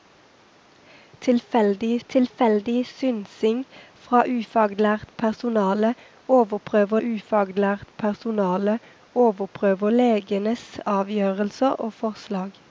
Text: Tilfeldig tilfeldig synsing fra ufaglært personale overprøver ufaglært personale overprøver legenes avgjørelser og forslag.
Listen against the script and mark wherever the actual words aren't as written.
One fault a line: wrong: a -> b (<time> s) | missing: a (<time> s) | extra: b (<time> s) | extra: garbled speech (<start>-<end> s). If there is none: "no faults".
no faults